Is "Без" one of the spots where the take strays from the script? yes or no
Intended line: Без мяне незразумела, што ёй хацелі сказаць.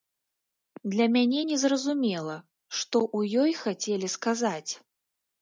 yes